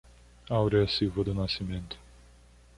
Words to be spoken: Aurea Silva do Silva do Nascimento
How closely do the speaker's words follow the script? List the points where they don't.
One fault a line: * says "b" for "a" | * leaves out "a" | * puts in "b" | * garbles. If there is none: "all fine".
* leaves out "Silva do"